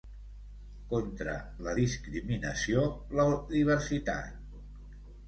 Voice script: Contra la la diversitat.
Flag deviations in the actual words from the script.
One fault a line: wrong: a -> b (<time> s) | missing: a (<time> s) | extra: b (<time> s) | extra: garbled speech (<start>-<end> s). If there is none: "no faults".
extra: discriminació (1.8 s)